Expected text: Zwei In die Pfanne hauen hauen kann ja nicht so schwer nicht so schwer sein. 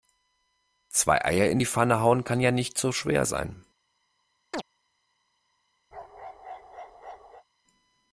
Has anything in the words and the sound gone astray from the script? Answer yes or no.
yes